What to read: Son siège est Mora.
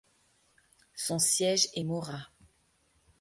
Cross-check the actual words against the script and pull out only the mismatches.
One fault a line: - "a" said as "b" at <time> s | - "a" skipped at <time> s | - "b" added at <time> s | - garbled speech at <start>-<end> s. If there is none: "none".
none